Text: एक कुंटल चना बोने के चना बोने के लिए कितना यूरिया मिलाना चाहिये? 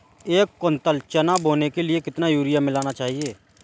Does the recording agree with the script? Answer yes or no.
no